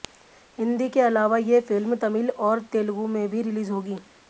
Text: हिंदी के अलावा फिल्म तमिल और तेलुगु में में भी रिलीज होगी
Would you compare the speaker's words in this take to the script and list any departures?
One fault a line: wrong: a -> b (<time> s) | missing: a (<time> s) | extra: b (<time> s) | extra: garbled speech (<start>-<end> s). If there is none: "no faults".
extra: ये (1.4 s)
missing: में (3.3 s)